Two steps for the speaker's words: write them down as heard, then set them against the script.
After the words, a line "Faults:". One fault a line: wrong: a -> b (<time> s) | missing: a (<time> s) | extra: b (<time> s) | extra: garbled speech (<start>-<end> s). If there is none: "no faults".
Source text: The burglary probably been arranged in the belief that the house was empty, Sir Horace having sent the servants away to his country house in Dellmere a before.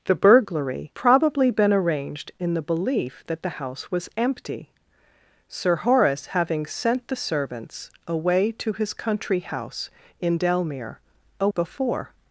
The burglary probably been arranged in the belief that the house was empty, Sir Horace having sent the servants away to his country house in Dellmere a before.
Faults:
no faults